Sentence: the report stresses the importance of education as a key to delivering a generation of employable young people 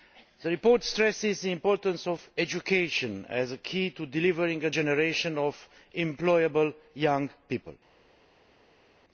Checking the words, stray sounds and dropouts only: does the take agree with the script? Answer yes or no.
yes